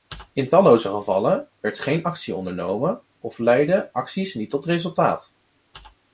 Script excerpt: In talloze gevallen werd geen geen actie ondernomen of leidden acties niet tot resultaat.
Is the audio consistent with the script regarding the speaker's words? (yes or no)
no